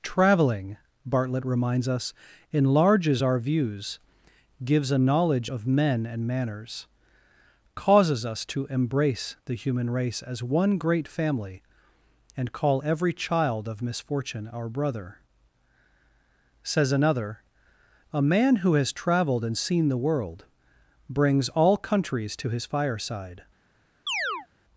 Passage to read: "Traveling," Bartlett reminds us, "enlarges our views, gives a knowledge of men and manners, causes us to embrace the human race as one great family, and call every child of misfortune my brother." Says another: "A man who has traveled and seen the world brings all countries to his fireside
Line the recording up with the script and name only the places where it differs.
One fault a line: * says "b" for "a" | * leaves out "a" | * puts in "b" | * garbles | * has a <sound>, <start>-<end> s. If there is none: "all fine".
* says "our" for "my"
* has a chirp, 24.1-24.5 s